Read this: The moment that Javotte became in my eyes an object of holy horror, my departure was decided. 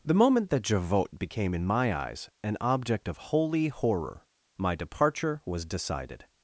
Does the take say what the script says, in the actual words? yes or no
yes